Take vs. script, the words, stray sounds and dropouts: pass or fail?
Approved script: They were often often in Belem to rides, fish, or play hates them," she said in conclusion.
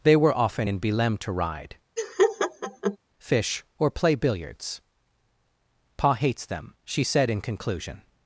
fail